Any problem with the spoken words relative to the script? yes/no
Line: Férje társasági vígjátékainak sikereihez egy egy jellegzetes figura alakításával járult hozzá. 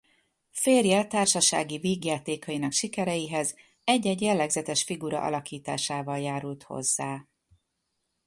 no